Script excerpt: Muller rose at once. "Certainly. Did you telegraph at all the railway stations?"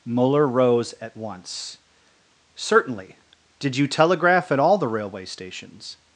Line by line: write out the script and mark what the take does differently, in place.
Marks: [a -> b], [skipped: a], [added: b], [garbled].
Muller rose at once. "Certainly. Did you telegraph at all the railway stations?"